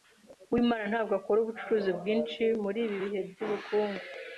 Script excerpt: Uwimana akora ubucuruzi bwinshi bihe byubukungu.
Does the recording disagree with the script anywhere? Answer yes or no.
yes